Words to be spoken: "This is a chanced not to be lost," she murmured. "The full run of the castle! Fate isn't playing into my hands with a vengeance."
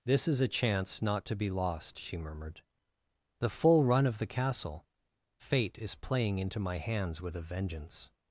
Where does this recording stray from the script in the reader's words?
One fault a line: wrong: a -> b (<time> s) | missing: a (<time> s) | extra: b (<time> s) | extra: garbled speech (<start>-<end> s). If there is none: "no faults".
wrong: chanced -> chance (0.5 s)
wrong: isn't -> is (5.8 s)